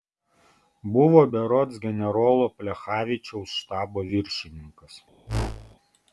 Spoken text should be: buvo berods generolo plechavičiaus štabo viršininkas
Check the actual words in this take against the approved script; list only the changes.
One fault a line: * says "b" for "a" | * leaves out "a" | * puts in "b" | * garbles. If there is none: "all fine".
all fine